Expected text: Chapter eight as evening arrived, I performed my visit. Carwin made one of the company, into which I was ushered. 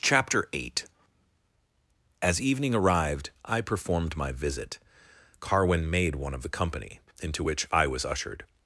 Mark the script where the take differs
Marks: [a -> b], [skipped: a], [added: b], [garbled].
Chapter eight as evening arrived, I performed my visit. Carwin made one of the company, into which I was ushered.